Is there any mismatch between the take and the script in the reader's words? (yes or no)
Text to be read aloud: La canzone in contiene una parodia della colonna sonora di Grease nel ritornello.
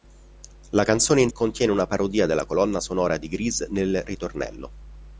no